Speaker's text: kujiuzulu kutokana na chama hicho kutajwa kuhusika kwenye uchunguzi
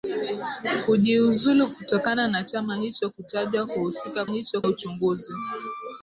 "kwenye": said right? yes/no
no